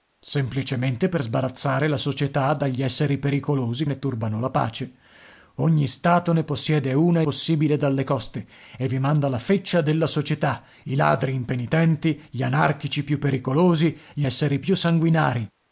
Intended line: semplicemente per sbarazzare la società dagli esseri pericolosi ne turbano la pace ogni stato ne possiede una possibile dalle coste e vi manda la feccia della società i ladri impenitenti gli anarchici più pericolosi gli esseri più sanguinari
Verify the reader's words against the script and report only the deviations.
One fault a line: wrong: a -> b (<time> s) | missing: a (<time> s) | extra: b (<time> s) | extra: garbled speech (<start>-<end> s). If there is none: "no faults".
no faults